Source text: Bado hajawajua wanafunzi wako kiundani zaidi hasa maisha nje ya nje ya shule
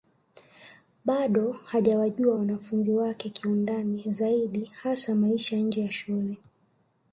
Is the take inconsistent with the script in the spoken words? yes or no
yes